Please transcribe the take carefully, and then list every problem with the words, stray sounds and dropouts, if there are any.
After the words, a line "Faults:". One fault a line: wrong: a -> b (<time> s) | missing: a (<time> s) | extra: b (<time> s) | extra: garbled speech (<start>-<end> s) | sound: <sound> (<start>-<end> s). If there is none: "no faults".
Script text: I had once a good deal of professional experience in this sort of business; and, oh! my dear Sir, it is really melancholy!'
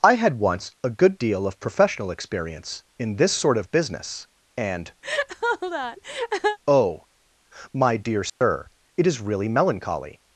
I had once a good deal of professional experience in this sort of business; and, oh! my dear Sir, it is really melancholy!'
Faults:
sound: laugh (5.0-6.6 s)
sound: dropout (8.3-8.4 s)